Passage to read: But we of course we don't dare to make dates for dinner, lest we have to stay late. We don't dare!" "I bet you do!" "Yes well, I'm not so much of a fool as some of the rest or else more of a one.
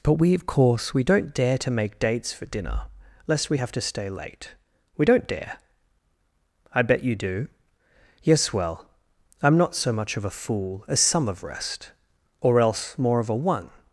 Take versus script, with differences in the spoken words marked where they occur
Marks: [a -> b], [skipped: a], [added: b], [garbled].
But we of course we don't dare to make dates for dinner, lest we have to stay late. We don't dare!" "I bet you do!" "Yes well, I'm not so much of a fool as some of [skipped: the] rest or else more of a one.